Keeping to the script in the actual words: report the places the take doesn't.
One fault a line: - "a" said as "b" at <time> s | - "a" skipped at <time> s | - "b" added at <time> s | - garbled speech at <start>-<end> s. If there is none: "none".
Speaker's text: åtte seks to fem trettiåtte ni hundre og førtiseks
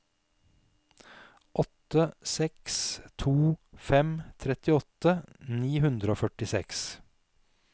none